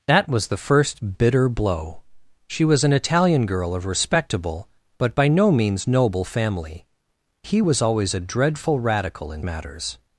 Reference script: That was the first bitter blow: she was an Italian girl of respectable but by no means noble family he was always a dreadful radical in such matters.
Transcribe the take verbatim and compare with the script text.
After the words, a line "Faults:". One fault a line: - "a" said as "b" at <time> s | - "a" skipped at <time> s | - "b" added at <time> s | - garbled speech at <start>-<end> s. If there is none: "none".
That was the first bitter blow: she was an Italian girl of respectable but by no means noble family he was always a dreadful radical in matters.
Faults:
- "such" skipped at 9.4 s